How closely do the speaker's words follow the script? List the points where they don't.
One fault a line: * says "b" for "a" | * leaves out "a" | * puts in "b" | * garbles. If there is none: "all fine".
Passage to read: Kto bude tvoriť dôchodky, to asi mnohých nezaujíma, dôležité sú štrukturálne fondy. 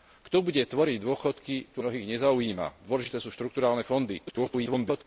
* leaves out "asi"
* garbles